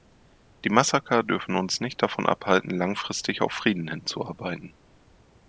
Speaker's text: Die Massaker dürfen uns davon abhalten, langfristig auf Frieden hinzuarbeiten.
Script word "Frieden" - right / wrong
right